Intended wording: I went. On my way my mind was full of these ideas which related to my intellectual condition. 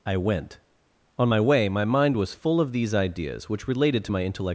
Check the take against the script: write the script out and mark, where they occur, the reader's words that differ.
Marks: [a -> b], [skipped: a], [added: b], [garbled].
I went. On my way my mind was full of these ideas which related to my intellectual [skipped: condition.]